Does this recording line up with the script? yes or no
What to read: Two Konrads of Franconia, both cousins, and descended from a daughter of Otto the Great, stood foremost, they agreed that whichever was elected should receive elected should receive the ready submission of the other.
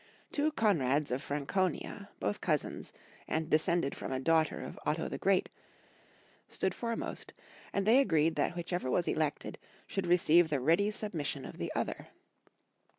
no